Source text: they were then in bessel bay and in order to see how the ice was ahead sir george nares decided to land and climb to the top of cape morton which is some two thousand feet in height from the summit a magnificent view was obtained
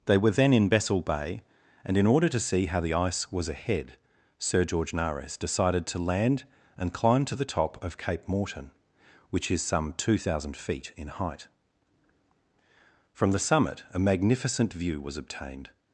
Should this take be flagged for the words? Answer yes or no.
no